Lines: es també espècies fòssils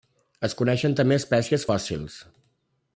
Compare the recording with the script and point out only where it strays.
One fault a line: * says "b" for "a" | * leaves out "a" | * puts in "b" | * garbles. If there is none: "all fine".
* puts in "coneixen"